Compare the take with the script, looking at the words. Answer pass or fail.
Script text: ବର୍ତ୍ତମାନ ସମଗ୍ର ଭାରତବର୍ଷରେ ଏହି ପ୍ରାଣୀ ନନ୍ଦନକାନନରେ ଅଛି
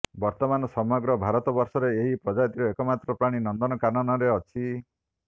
fail